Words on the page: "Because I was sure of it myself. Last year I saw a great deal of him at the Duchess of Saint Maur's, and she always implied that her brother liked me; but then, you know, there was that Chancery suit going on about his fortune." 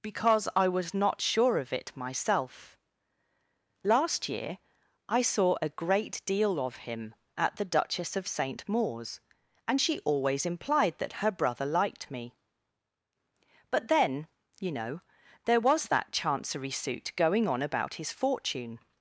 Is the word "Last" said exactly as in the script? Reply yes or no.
yes